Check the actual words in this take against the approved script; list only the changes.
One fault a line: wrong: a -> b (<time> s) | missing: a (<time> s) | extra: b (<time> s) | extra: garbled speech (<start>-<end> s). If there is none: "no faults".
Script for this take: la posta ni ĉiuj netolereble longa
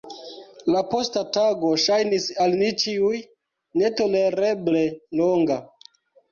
extra: tago ŝajnis al (1.4 s)